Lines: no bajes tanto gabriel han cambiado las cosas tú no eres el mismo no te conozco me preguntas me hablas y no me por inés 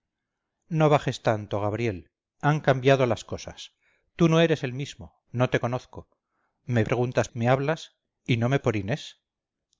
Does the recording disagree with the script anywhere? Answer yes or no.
no